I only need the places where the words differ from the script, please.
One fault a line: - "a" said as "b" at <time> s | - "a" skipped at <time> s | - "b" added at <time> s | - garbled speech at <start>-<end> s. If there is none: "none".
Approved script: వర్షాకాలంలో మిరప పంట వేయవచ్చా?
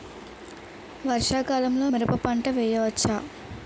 none